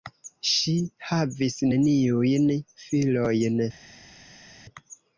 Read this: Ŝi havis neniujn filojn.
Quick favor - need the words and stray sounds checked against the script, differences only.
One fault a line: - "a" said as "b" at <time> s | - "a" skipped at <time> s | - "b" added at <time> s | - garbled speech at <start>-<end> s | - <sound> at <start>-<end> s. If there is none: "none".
none